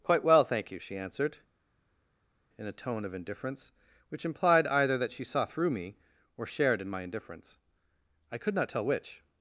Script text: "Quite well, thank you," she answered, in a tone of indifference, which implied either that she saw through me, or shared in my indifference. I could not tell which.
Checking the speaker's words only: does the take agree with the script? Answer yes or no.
yes